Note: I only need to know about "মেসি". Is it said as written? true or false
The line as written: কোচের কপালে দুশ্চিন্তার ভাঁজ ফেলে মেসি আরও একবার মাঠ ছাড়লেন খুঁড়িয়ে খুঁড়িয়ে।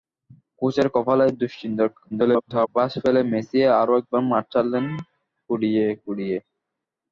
true